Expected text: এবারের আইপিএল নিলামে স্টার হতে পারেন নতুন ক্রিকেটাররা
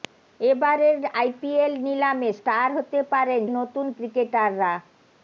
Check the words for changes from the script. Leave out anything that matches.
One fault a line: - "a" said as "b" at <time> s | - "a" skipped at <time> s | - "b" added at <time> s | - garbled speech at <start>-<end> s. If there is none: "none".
none